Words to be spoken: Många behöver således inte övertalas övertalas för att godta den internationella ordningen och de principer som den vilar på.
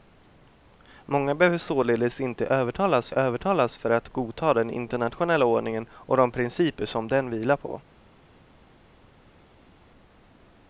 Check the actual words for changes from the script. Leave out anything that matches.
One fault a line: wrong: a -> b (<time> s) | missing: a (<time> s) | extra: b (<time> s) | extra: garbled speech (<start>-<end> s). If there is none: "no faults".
no faults